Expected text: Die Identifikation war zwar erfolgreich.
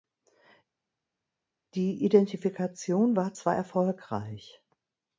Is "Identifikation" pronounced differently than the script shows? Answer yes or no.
no